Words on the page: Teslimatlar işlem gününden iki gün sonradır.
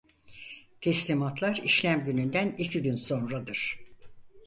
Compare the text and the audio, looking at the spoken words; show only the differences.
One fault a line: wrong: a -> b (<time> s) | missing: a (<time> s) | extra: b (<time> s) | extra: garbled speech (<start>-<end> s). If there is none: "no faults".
no faults